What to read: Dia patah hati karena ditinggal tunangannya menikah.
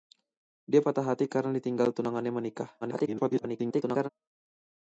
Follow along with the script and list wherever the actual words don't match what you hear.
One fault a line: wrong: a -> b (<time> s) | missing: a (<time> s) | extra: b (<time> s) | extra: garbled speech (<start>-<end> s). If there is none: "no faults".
extra: garbled speech (2.8-4.1 s)